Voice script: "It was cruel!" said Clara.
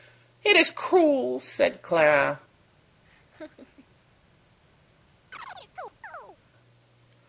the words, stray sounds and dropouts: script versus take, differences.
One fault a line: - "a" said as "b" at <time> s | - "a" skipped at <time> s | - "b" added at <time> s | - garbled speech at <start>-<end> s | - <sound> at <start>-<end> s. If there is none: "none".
- "was" said as "is" at 0.6 s
- laugh at 3.0-4.0 s
- chirp at 5.3-6.4 s